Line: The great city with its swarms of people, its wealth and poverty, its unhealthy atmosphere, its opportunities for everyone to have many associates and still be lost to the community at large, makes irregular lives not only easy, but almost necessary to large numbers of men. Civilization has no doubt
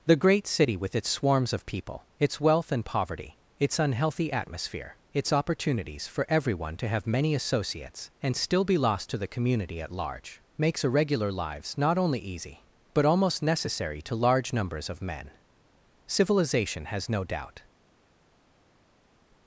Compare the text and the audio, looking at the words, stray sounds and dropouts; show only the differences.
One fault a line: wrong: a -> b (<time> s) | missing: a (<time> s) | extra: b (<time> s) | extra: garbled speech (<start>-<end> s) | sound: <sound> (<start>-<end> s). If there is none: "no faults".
no faults